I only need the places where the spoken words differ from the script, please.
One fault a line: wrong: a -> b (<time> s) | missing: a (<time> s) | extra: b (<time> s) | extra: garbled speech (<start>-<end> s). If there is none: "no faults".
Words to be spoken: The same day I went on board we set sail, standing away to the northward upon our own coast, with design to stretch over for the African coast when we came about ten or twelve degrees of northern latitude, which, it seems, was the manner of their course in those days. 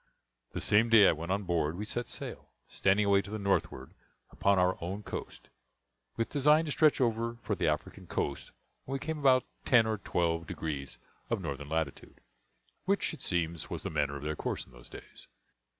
no faults